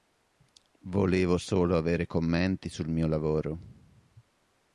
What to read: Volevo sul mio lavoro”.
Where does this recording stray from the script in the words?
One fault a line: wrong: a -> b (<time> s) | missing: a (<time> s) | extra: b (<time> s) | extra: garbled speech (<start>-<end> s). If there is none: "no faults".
extra: solo avere commenti (1.4 s)